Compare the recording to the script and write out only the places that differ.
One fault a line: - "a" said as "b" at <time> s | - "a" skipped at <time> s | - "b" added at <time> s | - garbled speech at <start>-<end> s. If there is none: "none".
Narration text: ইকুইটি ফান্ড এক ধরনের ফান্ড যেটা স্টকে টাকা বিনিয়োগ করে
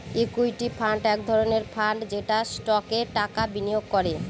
none